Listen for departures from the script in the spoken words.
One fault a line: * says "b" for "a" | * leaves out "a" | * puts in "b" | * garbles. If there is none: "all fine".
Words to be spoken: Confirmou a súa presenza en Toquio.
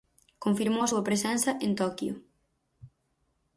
all fine